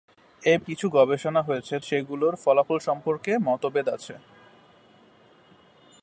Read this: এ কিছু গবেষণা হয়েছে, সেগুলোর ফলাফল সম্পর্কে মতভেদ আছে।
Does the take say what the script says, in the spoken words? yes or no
yes